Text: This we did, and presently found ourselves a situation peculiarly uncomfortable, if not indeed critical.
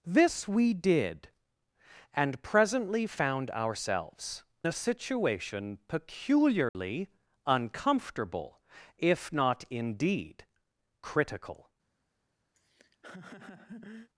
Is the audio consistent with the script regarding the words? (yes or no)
yes